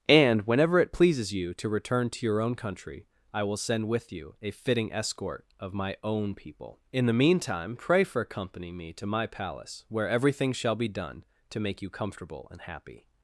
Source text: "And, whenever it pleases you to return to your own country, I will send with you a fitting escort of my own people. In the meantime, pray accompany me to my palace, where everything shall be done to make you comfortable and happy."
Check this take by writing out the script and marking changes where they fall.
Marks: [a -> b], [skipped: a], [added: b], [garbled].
"And, whenever it pleases you to return to your own country, I will send with you a fitting escort of my own people. In the meantime, pray [added: for] accompany me to my palace, where everything shall be done to make you comfortable and happy."